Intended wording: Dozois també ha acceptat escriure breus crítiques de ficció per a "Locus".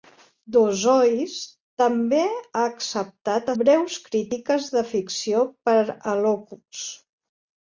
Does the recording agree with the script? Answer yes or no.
no